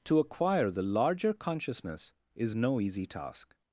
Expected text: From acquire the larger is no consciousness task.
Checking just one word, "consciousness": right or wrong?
wrong